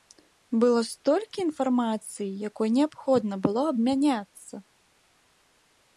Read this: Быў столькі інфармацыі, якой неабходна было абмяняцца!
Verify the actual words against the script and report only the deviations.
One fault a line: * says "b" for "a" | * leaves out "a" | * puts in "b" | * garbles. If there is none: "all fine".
* says "Было" for "Быў"